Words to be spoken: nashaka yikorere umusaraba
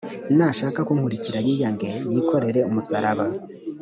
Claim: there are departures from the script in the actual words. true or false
true